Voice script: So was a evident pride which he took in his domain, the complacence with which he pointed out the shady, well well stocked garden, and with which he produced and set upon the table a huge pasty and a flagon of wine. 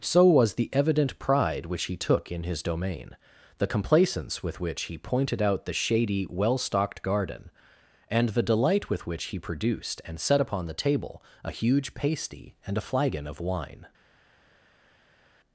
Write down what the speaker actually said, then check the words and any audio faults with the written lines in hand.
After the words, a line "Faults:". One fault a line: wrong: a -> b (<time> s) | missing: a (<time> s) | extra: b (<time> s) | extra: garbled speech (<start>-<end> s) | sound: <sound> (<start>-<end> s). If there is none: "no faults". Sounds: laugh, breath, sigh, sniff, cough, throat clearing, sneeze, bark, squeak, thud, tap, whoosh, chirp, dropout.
So was the evident pride which he took in his domain, the complacence with which he pointed out the shady, well stocked garden, and the delight with which he produced and set upon the table a huge pasty and a flagon of wine.
Faults:
wrong: a -> the (0.6 s)
missing: well (6.6 s)
extra: the delight (8.3 s)